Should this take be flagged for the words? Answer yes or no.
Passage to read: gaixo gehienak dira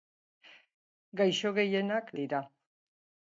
no